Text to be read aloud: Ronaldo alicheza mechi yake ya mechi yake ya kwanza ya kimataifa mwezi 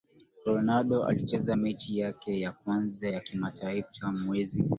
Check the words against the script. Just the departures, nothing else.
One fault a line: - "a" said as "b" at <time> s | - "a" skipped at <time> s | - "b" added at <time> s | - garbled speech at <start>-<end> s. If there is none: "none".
- "mechi yake ya" skipped at 2.5 s